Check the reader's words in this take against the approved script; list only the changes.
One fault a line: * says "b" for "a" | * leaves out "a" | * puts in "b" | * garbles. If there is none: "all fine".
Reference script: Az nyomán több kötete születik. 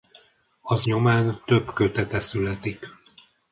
all fine